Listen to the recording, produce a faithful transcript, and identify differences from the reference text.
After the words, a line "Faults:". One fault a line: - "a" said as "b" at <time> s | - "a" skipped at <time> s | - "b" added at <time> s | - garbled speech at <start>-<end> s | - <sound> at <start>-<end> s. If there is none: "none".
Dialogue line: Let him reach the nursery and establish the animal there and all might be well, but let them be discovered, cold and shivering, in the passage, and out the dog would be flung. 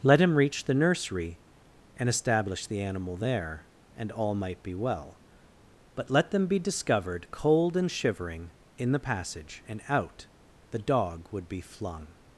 Let him reach the nursery and establish the animal there and all might be well, but let them be discovered, cold and shivering, in the passage, and out the dog would be flung.
Faults:
none